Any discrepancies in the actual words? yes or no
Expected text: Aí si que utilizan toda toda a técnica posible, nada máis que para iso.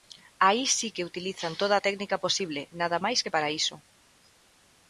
yes